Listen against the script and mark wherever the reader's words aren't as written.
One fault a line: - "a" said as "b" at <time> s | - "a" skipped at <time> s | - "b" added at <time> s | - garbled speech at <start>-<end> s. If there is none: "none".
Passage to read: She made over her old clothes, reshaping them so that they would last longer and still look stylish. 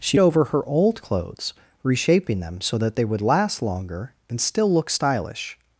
- "made" skipped at 0.2 s